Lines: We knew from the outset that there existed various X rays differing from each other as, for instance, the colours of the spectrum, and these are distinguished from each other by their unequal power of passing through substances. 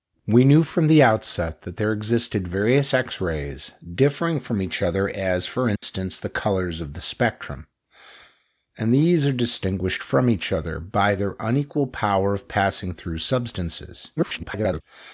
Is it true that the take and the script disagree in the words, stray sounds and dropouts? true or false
true